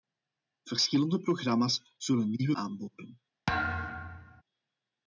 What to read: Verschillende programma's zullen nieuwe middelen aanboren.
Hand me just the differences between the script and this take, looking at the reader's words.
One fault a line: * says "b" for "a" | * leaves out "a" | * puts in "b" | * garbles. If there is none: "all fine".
* leaves out "middelen"